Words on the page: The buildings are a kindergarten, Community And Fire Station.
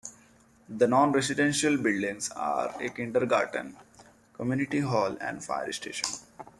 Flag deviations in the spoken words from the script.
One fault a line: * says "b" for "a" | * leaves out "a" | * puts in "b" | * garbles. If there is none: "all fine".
* puts in "non residential"
* puts in "Hall"